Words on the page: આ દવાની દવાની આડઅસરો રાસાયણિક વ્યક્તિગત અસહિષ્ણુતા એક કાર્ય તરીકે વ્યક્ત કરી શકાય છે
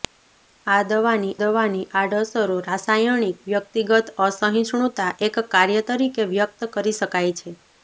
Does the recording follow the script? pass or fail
pass